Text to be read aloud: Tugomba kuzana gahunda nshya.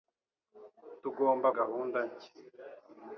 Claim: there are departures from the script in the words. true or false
true